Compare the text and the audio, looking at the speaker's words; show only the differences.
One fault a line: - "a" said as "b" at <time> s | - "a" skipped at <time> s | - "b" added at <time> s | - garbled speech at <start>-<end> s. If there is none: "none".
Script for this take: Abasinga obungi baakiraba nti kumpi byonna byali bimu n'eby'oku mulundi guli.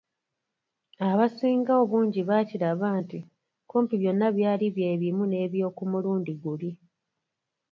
- "bye" added at 4.8 s